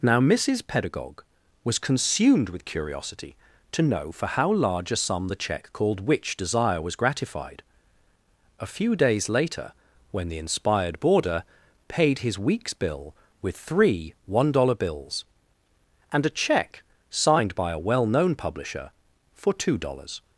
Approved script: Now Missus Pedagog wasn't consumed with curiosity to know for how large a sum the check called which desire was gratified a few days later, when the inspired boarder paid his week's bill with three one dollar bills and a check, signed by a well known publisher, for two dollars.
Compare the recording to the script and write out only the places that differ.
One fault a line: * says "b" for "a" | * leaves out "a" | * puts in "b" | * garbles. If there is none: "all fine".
* says "was" for "wasn't"